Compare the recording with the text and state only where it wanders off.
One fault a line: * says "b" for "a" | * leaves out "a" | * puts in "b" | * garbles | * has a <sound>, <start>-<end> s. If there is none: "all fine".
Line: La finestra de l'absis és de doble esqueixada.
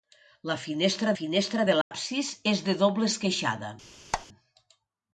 * puts in "finestra"
* has a dropout, 1.8-1.9 s
* has a squeak, 4.1-4.3 s